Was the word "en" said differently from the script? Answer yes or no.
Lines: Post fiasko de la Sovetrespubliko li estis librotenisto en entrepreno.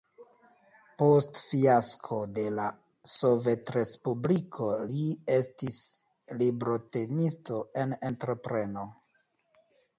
no